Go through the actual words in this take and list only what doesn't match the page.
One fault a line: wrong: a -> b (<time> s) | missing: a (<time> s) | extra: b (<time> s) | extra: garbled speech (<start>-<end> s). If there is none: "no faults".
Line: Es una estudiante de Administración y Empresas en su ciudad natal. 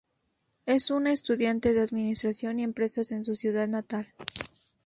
no faults